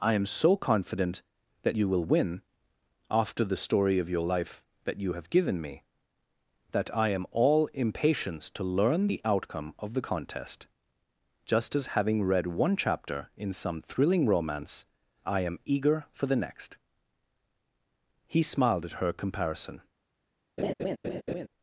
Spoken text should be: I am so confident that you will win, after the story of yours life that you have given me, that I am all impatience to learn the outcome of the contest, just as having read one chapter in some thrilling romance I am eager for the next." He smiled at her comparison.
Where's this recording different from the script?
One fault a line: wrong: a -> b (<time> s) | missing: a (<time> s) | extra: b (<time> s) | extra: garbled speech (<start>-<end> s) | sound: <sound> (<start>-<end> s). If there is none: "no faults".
wrong: yours -> your (4.1 s)
sound: laugh (20.6-21.5 s)